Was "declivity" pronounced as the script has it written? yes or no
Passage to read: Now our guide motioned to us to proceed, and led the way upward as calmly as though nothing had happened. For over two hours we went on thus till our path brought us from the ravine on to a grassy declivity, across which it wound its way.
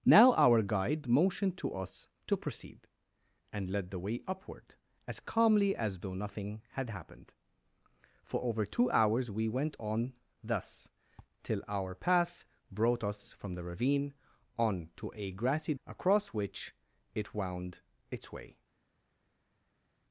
no